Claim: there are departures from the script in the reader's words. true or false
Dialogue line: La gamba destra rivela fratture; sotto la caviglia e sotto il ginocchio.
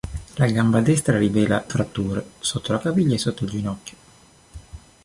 false